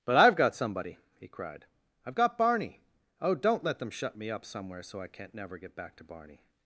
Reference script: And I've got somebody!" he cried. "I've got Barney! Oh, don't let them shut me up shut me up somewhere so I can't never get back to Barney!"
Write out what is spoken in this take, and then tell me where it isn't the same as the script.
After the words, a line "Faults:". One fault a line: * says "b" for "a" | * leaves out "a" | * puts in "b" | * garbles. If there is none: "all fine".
But I've got somebody!" he cried. "I've got Barney! Oh, don't let them shut me up somewhere so I can't never get back to Barney!"
Faults:
* says "But" for "And"
* leaves out "shut me up"